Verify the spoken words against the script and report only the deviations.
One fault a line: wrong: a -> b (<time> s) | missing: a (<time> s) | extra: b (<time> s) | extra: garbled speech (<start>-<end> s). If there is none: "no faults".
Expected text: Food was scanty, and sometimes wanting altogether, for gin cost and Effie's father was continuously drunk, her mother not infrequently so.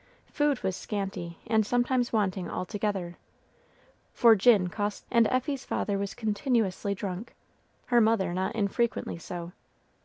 no faults